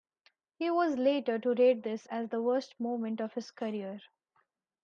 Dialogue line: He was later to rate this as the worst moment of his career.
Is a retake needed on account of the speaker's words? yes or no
no